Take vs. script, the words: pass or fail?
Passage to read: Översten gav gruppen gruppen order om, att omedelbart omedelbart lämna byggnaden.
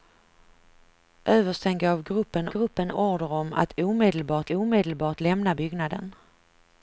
pass